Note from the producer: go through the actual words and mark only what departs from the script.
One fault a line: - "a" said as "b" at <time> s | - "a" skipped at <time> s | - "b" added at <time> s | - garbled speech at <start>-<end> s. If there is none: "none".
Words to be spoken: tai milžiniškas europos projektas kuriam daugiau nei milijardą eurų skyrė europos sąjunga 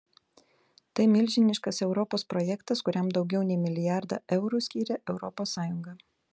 none